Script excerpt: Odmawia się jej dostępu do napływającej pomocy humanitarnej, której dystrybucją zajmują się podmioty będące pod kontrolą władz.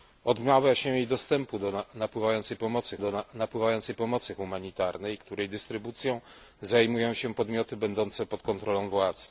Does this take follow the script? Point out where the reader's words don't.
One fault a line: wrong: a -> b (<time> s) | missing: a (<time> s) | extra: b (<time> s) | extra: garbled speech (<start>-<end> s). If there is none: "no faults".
extra: do napływającej pomocy (3.0 s)